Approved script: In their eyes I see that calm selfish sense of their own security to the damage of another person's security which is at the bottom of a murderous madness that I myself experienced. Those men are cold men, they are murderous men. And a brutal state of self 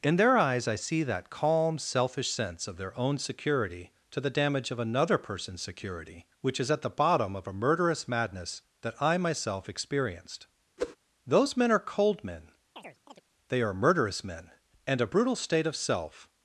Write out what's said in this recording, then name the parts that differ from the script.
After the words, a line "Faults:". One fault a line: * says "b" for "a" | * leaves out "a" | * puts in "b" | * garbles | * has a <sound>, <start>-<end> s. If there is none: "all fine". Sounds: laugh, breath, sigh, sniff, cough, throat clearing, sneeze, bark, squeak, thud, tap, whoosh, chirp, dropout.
In their eyes I see that calm selfish sense of their own security to the damage of another person's security which is at the bottom of a murderous madness that I myself experienced. Those men are cold men, they are murderous men. And a brutal state of self
Faults:
* has a whoosh, 10.8-11.0 s
* has a chirp, 12.8-13.2 s